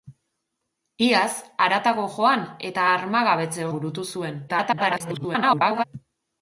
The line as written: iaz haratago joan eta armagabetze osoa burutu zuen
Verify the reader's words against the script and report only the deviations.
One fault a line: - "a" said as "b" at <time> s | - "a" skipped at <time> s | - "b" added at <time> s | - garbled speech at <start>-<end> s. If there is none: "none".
- "osoa" skipped at 3.7 s
- garbled speech at 4.5-5.8 s